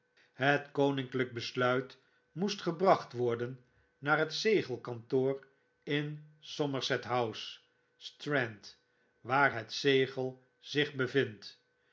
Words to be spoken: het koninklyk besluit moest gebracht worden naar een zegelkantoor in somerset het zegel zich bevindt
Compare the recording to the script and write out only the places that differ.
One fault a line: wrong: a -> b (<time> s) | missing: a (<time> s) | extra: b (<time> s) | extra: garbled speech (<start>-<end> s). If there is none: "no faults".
wrong: een -> het (4.2 s)
extra: house strand waar (7.0 s)